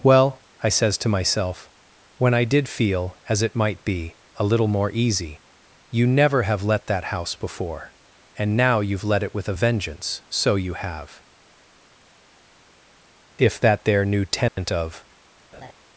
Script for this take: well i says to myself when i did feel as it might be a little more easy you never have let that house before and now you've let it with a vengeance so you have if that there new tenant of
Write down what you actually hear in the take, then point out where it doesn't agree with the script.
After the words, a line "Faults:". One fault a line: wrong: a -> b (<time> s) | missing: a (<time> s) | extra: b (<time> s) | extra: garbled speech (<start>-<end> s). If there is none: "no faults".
well i says to myself when i did feel as it might be a little more easy you never have let that house before and now you've let it with a vengeance so you have if that there new tenant of
Faults:
no faults